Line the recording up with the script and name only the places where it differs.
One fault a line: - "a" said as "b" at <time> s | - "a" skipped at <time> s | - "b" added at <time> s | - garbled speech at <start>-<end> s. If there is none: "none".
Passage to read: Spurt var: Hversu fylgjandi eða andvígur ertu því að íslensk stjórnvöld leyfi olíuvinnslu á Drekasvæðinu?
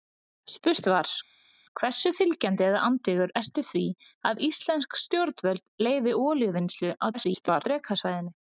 - garbled speech at 7.1-7.6 s